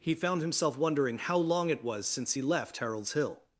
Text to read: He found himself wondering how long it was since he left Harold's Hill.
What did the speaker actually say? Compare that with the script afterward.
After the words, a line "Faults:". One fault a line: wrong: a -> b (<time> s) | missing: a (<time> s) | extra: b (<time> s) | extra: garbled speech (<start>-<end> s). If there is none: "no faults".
He found himself wondering how long it was since he left Harold's Hill.
Faults:
no faults